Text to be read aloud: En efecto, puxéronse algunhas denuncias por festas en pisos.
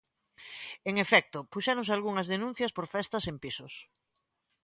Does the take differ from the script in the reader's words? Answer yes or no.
no